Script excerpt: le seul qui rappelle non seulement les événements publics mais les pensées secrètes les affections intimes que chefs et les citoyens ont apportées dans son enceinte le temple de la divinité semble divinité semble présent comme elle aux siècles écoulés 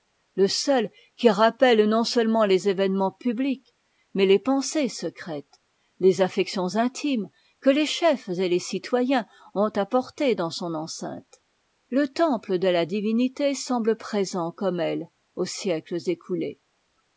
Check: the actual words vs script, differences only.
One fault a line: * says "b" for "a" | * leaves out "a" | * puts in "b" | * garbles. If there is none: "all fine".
* puts in "les"
* leaves out "divinité semble"